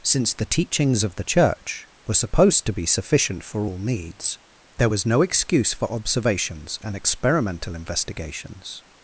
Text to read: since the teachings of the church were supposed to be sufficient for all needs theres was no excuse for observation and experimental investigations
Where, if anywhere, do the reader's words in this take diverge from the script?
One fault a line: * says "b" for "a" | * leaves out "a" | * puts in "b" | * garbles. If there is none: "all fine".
* says "there" for "theres"
* says "observations" for "observation"